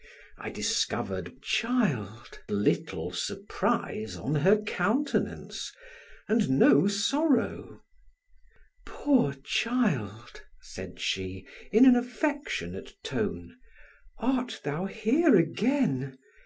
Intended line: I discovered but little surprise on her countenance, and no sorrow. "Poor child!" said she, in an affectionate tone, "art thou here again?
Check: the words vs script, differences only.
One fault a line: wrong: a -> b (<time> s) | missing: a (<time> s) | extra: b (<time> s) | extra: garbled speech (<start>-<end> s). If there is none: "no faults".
wrong: but -> child (1.4 s)